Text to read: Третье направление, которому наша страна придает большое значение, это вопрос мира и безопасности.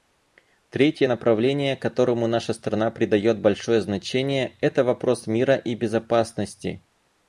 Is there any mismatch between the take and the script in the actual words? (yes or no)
no